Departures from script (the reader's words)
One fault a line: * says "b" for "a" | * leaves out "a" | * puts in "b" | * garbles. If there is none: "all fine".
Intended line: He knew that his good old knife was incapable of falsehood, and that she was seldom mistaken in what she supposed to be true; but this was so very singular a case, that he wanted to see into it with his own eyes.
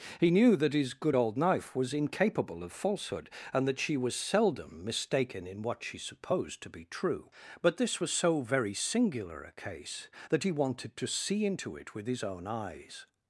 all fine